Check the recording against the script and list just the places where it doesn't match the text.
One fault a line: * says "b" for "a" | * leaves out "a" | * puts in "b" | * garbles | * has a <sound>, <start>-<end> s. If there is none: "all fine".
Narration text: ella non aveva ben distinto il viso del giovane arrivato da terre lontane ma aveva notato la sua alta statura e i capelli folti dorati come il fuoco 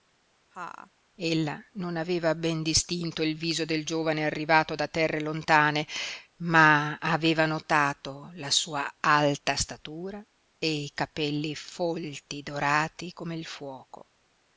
* has a laugh, 0.5-0.9 s